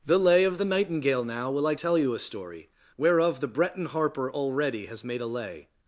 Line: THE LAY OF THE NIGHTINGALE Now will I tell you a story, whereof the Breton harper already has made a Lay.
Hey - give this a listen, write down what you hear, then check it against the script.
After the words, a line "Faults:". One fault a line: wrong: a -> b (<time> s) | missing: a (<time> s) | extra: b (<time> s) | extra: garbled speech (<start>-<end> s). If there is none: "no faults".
THE LAY OF THE NIGHTINGALE Now will I tell you a story, whereof the Breton harper already has made a Lay.
Faults:
no faults